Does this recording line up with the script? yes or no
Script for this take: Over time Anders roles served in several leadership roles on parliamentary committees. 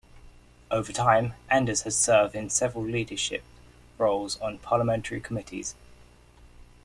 no